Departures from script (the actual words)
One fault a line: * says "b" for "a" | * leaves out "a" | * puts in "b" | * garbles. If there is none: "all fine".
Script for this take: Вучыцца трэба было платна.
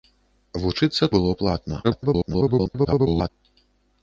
* leaves out "трэба"
* garbles